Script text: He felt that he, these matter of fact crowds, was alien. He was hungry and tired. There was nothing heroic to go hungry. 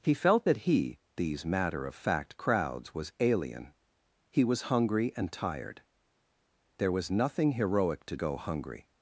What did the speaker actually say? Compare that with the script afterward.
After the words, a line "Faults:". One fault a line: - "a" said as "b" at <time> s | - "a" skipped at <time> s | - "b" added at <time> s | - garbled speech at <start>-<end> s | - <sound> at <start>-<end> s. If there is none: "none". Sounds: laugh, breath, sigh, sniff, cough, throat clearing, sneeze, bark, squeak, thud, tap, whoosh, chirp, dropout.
He felt that he, these matter of fact crowds, was alien. He was hungry and tired. There was nothing heroic to go hungry.
Faults:
none